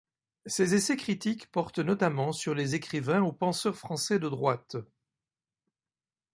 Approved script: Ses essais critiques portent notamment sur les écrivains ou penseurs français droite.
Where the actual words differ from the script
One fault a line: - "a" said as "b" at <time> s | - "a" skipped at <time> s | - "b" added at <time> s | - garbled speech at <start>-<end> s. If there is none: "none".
- "de" added at 4.2 s